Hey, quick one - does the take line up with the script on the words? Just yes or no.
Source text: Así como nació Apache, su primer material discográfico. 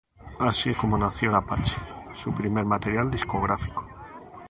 yes